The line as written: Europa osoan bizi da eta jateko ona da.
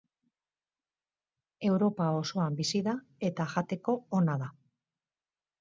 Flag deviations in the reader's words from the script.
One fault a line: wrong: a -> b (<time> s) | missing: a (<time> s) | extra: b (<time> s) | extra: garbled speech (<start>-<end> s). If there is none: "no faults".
no faults